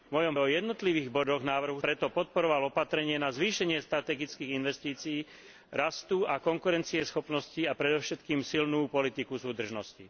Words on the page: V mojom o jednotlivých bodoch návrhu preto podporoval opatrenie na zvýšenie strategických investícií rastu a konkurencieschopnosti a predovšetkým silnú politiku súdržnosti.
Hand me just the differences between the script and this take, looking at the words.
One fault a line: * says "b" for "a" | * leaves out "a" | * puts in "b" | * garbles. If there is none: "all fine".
all fine